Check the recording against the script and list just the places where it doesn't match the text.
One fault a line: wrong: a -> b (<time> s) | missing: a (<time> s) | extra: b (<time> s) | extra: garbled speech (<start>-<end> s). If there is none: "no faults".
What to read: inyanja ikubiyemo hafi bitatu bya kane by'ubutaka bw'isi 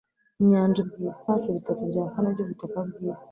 wrong: ikubiyemo -> bw'isi (0.9 s)